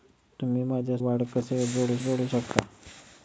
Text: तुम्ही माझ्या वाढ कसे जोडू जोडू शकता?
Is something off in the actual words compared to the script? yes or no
no